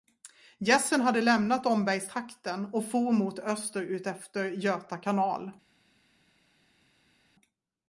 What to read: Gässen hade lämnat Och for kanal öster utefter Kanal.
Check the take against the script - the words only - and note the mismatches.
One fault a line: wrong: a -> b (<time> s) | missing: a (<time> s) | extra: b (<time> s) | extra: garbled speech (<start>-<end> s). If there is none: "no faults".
extra: Ombergstrakten (1.6 s)
wrong: kanal -> mot (3.1 s)
extra: Göta (4.5 s)